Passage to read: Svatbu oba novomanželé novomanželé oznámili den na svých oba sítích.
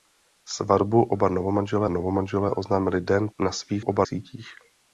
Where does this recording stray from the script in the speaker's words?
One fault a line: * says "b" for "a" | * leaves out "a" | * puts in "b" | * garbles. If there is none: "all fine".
all fine